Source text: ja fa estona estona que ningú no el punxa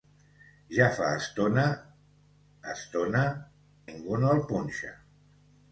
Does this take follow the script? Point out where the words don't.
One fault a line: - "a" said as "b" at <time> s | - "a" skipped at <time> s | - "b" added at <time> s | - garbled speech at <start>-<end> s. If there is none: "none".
- "que" skipped at 3.2 s